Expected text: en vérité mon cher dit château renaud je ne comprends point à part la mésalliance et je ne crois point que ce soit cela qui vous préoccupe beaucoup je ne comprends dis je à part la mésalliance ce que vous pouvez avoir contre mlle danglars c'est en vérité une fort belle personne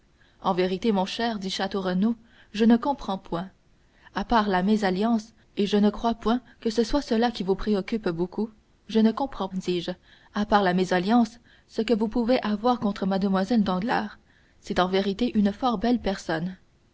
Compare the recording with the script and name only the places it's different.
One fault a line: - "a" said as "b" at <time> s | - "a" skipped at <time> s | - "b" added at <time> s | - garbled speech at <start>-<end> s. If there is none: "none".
none